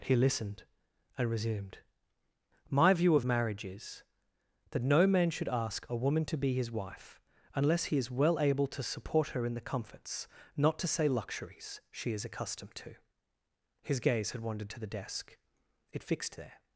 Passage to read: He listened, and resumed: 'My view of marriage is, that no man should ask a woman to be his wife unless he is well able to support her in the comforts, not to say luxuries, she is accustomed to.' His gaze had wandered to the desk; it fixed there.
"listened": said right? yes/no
yes